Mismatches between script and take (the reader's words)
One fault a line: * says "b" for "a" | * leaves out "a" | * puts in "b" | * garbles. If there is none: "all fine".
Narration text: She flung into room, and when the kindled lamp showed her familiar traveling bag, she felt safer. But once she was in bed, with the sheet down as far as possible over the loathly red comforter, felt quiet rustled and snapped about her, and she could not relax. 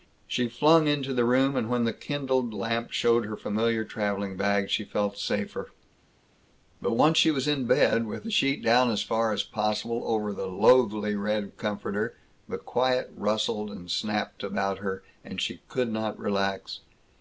* puts in "the"
* says "the" for "felt"